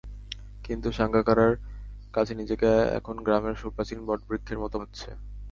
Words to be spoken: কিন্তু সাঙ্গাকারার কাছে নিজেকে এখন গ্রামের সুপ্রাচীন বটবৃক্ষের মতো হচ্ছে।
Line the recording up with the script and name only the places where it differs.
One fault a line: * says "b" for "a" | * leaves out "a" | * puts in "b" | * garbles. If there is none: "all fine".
all fine